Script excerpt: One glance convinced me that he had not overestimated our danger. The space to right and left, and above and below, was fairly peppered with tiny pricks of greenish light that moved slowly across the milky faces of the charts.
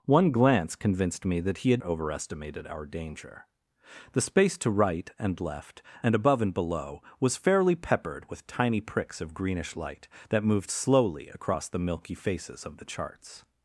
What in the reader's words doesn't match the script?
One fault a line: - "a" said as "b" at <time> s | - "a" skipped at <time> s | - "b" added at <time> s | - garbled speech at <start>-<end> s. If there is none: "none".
- "not" skipped at 1.8 s